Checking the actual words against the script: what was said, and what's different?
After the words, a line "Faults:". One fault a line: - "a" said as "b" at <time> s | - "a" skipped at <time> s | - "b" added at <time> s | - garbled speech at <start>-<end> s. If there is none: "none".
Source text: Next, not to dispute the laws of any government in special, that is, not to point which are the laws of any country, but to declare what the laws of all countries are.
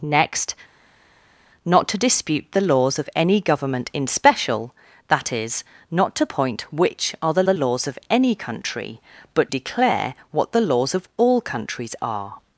Next, not to dispute the laws of any government in special, that is, not to point which are the the laws of any country, but declare what the laws of all countries are.
Faults:
- "the" added at 7.4 s
- "to" skipped at 9.5 s